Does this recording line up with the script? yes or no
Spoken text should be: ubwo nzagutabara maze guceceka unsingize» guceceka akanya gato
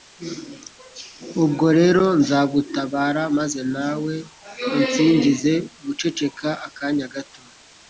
no